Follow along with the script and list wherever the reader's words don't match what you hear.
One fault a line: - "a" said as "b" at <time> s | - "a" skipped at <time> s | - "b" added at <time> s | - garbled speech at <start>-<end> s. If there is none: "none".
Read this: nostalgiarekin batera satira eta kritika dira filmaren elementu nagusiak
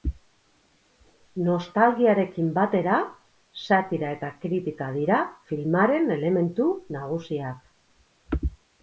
none